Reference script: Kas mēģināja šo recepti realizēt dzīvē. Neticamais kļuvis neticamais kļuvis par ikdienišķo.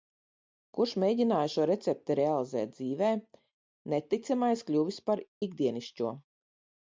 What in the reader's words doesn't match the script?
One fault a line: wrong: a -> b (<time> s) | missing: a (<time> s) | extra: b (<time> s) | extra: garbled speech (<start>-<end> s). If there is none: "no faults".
wrong: Kas -> Kurš (0.8 s)
missing: neticamais kļuvis (5.0 s)